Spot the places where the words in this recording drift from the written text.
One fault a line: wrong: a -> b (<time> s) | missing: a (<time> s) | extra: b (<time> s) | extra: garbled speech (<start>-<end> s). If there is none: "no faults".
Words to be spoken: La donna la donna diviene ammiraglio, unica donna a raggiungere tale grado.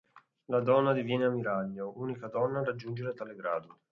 missing: la donna (0.9 s)